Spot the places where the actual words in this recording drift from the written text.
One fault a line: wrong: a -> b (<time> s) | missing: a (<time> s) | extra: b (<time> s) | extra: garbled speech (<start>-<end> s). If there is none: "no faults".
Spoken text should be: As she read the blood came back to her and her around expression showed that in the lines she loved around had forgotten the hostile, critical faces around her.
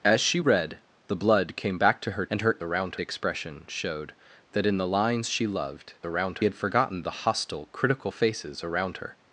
no faults